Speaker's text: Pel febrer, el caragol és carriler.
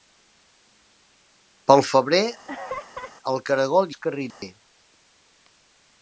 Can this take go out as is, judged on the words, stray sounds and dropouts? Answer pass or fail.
fail